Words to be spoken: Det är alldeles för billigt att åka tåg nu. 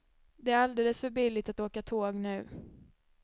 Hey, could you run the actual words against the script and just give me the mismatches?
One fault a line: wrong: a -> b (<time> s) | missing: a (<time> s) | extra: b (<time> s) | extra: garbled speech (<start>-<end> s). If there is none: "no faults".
no faults